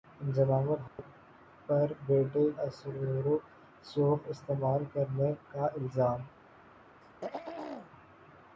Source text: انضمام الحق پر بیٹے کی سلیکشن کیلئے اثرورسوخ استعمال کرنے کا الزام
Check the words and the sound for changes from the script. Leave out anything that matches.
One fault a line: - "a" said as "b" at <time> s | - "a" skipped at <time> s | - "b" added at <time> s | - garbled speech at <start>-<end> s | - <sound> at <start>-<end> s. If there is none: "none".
- dropout at 0.9-1.0 s
- "کی سلیکشن کیلئے" skipped at 2.4 s
- throat clearing at 7.0-7.9 s